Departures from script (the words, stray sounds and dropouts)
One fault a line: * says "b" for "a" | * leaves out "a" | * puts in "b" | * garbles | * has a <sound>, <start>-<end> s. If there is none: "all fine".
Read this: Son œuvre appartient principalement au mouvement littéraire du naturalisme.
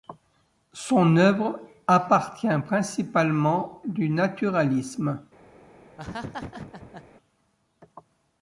* leaves out "au mouvement littéraire"
* has a laugh, 6.0-7.1 s